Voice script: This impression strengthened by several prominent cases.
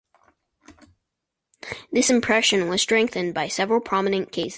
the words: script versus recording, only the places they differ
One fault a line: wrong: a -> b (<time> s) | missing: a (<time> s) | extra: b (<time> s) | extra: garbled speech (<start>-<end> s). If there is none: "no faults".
extra: was (2.7 s)